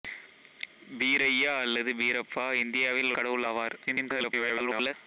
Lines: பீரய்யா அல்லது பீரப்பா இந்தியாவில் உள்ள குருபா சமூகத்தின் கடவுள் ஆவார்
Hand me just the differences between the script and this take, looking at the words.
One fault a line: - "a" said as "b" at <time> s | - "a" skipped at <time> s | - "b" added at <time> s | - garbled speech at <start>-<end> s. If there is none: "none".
- "உள்ள குருபா சமூகத்தின்" skipped at 3.1 s
- garbled speech at 3.9-4.9 s